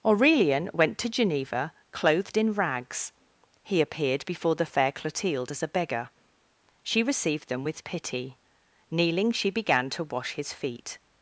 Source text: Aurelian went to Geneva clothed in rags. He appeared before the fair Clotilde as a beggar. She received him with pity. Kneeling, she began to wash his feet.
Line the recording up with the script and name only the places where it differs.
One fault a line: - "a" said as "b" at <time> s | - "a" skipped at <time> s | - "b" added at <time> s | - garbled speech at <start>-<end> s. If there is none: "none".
- "him" said as "them" at 7.5 s